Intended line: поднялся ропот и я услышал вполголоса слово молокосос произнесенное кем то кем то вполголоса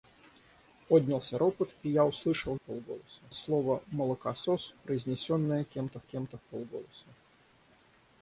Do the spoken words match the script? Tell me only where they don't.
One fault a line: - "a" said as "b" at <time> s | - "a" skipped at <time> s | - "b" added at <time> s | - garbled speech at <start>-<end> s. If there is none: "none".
none